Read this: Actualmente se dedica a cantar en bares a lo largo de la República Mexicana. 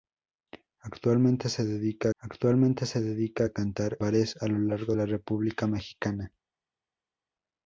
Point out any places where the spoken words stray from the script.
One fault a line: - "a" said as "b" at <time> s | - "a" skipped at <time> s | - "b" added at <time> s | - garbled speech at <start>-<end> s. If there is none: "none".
- "actualmente se dedica" added at 2.2 s
- "en" skipped at 4.0 s
- "de" skipped at 4.9 s